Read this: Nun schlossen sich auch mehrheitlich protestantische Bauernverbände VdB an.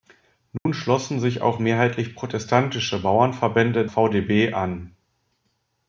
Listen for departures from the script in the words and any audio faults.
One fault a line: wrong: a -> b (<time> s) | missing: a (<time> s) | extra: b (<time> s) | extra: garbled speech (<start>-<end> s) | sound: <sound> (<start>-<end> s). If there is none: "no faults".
sound: dropout (0.6-0.7 s)